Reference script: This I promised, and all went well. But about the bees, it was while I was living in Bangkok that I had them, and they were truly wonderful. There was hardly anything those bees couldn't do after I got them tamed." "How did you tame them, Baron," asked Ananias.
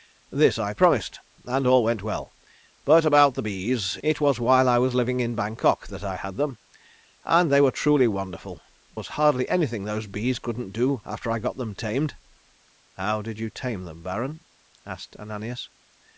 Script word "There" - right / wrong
wrong